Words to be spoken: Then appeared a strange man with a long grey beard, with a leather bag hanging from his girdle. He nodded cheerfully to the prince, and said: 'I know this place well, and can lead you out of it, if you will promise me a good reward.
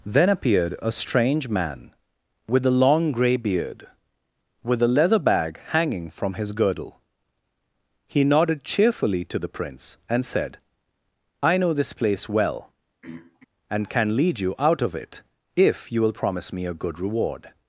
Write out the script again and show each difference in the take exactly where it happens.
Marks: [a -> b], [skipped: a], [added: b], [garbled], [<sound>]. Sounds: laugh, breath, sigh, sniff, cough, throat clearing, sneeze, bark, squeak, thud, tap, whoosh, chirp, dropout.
Then appeared a strange man with a long grey beard, with a leather bag hanging from his girdle. He nodded cheerfully to the prince, and said: 'I know this place well, [throat clearing] and can lead you out of it, if you will promise me a good reward.